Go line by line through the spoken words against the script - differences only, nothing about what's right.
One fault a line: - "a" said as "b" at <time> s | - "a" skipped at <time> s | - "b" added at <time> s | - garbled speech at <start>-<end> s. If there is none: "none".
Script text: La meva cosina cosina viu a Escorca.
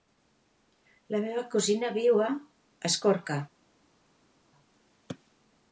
- "cosina" skipped at 1.9 s